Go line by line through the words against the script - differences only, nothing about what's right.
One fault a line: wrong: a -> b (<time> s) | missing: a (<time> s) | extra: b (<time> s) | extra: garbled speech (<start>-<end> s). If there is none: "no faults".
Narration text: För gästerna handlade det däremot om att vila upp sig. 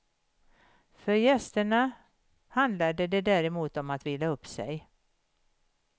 no faults